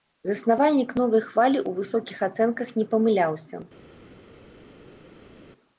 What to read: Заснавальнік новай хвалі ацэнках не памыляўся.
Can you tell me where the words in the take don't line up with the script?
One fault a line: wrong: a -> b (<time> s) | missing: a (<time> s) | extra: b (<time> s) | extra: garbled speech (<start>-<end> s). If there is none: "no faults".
extra: ў высокіх (1.6 s)